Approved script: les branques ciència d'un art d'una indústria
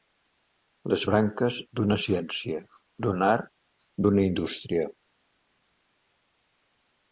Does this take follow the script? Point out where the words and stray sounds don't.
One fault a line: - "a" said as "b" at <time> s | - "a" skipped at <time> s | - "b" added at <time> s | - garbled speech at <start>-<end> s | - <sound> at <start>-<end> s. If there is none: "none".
- "d'una" added at 1.8 s